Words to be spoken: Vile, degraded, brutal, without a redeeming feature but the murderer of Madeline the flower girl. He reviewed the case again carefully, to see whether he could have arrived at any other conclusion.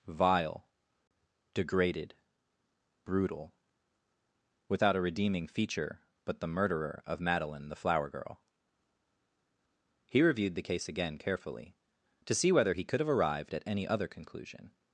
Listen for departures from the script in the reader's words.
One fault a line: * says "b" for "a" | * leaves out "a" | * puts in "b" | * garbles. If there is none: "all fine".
all fine